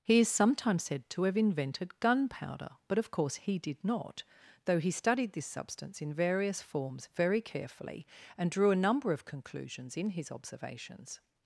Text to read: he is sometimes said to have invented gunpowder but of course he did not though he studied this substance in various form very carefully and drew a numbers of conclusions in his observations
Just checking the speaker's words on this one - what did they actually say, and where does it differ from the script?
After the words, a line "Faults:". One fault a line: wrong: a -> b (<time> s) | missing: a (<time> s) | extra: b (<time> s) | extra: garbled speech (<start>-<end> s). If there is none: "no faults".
he is sometimes said to have invented gunpowder but of course he did not though he studied this substance in various forms very carefully and drew a number of conclusions in his observations
Faults:
wrong: form -> forms (6.6 s)
wrong: numbers -> number (8.8 s)